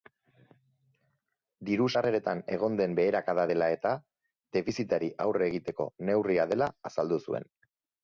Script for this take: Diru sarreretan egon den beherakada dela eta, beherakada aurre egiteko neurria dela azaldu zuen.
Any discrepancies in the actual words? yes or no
yes